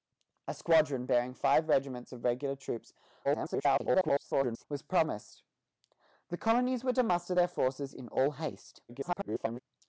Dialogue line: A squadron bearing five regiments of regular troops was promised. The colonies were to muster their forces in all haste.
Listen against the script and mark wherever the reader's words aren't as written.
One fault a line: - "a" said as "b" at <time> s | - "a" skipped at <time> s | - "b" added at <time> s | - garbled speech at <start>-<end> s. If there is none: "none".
- garbled speech at 3.2-4.7 s
- garbled speech at 8.9-9.6 s